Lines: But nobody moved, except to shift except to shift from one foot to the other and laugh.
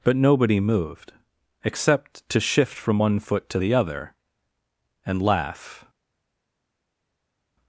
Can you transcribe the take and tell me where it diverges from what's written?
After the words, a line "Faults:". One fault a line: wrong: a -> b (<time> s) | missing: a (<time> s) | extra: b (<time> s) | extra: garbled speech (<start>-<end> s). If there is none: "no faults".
But nobody moved, except to shift from one foot to the other and laugh.
Faults:
missing: except to shift (2.7 s)